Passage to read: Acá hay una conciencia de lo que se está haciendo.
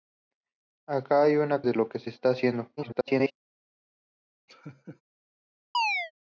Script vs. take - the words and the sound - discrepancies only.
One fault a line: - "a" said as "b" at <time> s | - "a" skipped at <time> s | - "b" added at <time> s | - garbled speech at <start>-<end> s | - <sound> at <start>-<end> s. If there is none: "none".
- "conciencia" skipped at 1.6 s
- garbled speech at 2.8-3.3 s
- laugh at 4.5-5.0 s
- chirp at 5.7-6.1 s